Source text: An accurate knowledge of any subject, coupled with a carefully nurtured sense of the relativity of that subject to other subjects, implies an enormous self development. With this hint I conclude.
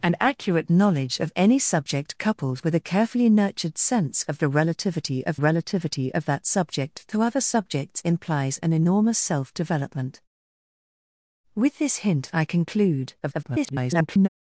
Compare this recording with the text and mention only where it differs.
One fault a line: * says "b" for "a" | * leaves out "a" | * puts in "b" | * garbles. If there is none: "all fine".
* puts in "relativity of"
* garbles